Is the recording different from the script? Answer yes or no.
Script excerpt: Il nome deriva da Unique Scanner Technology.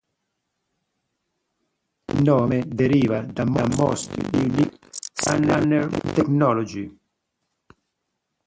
yes